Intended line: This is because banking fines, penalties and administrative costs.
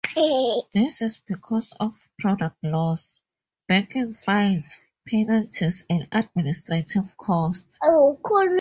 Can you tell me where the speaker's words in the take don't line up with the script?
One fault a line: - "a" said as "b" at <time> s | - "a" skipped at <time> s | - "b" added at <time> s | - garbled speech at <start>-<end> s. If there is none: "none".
- "of product loss" added at 1.8 s